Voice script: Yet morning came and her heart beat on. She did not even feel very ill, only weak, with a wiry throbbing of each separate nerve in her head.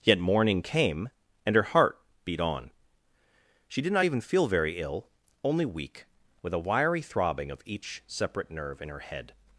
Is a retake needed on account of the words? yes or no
no